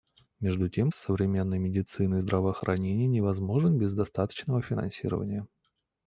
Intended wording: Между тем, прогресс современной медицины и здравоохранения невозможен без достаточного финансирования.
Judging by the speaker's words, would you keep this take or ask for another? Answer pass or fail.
fail